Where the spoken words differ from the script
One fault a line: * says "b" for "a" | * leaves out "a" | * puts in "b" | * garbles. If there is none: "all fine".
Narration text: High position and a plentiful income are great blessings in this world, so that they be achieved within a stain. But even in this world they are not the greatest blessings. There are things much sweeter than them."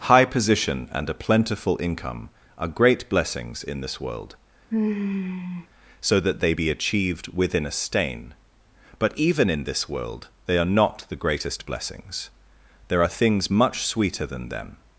all fine